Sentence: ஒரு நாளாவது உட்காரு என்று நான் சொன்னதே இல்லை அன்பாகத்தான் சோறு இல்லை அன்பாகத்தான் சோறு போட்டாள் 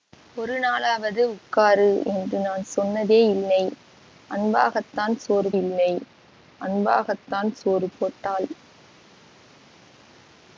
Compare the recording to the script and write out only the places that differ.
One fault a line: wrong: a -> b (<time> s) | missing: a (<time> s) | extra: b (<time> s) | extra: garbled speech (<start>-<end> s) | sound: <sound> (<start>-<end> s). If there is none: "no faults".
no faults